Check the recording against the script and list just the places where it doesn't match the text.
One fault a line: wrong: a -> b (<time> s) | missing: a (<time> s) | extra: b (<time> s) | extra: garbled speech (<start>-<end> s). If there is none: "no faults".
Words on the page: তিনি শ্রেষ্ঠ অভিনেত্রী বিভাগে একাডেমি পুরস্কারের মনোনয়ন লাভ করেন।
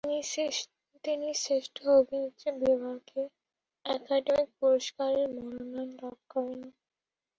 no faults